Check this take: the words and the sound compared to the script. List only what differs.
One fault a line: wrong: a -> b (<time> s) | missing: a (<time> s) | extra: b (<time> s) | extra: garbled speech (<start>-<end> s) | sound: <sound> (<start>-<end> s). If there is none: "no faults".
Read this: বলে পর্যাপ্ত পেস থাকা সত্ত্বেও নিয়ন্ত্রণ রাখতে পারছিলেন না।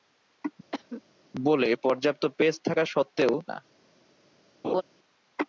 sound: cough (0.7-1.0 s)
missing: নিয়ন্ত্রণ রাখতে পারছিলেন (3.3 s)
sound: laugh (4.6-4.8 s)